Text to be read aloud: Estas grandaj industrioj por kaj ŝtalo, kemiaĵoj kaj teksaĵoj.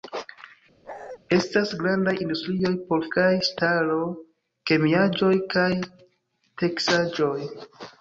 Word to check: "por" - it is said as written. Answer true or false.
true